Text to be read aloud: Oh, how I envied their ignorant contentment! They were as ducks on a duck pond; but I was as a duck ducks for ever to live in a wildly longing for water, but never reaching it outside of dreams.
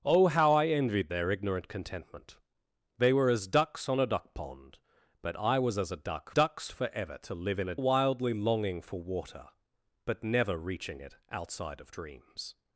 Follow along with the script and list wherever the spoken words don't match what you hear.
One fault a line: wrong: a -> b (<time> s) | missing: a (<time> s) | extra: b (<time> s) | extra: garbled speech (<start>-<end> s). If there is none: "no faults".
no faults